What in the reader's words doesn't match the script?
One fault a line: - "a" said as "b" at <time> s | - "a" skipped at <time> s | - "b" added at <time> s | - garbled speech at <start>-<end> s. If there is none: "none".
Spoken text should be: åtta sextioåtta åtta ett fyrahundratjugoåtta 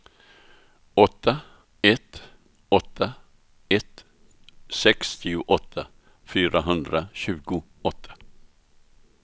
- "sextioåtta" said as "ett" at 1.8 s
- "sextioåtta" added at 4.7 s